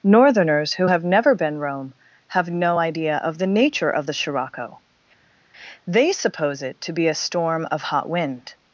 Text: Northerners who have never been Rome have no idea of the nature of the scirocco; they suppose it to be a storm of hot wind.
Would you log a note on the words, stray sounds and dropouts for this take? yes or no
no